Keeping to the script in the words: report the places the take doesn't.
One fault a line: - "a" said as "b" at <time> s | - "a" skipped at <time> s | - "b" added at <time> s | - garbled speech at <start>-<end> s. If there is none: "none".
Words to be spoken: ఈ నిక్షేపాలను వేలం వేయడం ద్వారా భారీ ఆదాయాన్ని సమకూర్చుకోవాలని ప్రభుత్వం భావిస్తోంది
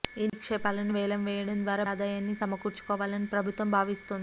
- "భారీ" skipped at 1.8 s